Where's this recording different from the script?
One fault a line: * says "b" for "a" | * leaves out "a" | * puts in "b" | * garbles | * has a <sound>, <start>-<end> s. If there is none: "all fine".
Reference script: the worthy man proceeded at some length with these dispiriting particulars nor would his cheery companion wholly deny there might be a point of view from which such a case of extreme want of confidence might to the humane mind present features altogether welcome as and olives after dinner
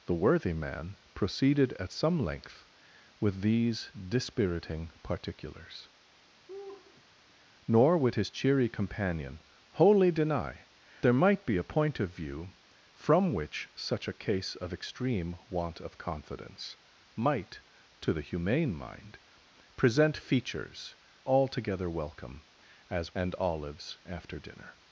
* has a laugh, 6.5-7.0 s